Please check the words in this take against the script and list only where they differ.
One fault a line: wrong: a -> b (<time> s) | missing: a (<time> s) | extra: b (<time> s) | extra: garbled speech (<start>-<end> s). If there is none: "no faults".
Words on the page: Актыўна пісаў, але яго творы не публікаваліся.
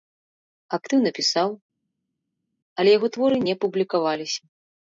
no faults